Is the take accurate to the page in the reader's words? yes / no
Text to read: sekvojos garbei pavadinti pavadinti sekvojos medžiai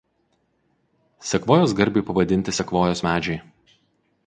no